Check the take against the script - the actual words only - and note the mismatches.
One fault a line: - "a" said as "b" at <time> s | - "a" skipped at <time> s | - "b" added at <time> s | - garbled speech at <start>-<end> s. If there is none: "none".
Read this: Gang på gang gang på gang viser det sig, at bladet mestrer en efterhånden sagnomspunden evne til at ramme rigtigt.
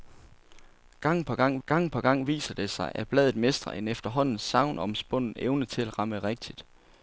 none